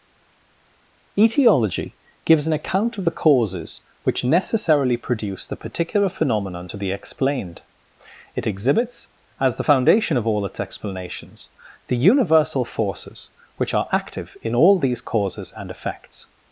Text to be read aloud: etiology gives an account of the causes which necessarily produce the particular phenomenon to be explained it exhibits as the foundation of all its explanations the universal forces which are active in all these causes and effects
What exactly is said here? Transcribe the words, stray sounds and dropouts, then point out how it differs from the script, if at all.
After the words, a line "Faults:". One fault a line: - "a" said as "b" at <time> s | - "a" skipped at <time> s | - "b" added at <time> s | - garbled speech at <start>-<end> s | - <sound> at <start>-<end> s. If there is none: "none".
etiology gives an account of the causes which necessarily produce the particular phenomenon to be explained it exhibits as the foundation of all its explanations the universal forces which are active in all these causes and effects
Faults:
none